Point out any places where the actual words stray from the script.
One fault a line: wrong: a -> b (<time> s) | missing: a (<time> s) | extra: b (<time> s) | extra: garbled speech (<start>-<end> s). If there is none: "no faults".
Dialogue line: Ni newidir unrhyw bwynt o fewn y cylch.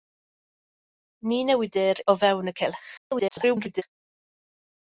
missing: unrhyw bwynt (2.0 s)
extra: garbled speech (3.0-3.8 s)